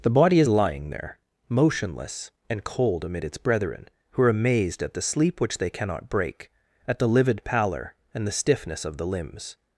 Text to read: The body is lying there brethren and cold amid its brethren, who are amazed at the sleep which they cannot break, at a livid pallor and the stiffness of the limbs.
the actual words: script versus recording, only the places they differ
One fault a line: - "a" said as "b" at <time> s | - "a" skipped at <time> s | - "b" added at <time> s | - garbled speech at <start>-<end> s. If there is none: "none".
- "brethren" said as "motionless" at 1.5 s
- "a" said as "the" at 7.0 s